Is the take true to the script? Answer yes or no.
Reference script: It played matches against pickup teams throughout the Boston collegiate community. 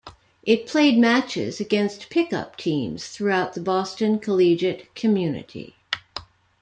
yes